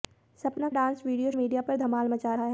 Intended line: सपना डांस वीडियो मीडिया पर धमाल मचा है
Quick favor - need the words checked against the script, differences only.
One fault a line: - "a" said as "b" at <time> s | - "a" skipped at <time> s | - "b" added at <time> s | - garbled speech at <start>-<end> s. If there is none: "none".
none